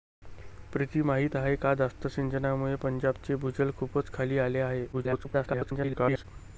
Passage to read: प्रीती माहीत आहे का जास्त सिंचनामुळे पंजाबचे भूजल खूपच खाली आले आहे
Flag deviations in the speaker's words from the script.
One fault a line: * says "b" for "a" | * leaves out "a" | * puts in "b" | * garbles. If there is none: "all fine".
* garbles